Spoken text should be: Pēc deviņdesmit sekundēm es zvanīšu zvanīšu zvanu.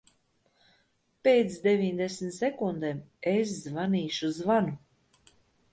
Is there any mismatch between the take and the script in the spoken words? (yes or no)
yes